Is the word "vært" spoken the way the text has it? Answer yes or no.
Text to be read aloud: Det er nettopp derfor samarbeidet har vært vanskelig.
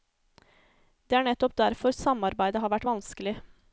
yes